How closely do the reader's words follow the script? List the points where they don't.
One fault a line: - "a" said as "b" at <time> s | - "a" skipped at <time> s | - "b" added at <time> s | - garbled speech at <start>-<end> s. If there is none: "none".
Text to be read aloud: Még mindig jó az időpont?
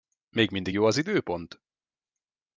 none